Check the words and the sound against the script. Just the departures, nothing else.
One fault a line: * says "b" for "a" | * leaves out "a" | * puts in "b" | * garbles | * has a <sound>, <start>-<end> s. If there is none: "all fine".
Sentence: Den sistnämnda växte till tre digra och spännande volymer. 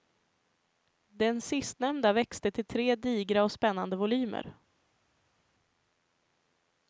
all fine